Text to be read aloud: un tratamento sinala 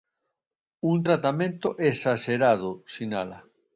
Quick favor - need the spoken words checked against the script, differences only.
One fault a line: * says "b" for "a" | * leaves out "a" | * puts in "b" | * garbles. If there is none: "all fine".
* puts in "esaxerado"